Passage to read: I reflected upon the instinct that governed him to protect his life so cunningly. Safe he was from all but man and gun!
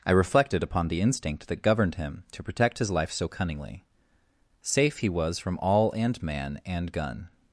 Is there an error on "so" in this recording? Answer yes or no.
no